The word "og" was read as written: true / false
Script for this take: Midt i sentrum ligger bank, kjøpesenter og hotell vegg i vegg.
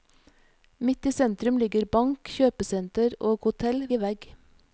true